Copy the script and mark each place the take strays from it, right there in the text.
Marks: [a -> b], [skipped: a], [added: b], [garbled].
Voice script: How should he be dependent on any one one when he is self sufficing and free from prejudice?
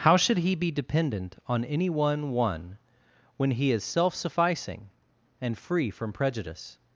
How should he be dependent on any one one when he is self sufficing and free from prejudice?